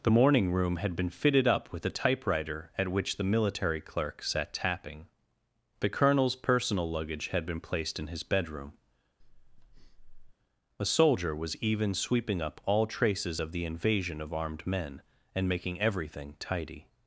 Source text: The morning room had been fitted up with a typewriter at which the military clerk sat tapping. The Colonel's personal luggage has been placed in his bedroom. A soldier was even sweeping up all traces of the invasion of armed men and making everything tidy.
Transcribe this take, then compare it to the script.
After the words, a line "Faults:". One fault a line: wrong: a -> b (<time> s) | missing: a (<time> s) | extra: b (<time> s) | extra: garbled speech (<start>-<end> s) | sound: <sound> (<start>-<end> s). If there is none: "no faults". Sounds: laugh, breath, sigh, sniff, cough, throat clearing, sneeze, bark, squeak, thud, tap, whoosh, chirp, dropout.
The morning room had been fitted up with a typewriter at which the military clerk sat tapping. The Colonel's personal luggage had been placed in his bedroom. A soldier was even sweeping up all traces of the invasion of armed men and making everything tidy.
Faults:
wrong: has -> had (7.3 s)
sound: breath (9.2-10.3 s)